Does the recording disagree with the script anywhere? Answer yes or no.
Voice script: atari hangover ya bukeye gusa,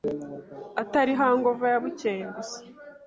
no